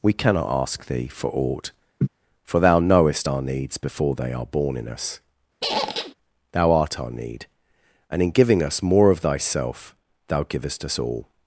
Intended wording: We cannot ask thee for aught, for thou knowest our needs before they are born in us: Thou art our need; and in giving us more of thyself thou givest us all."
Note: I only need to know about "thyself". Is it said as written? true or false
true